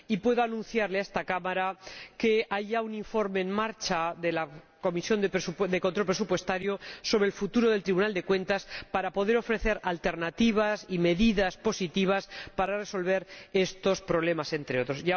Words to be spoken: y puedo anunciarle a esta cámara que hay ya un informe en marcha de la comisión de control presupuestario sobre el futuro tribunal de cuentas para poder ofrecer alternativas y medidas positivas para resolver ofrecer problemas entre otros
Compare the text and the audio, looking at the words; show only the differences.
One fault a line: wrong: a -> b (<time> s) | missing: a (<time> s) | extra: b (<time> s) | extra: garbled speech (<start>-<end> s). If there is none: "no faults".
extra: del (7.7 s)
wrong: ofrecer -> estos (13.5 s)